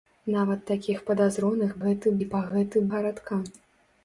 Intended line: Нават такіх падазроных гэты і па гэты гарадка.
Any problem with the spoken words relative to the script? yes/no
no